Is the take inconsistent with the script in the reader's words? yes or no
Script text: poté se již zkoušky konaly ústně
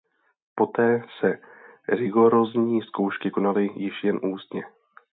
yes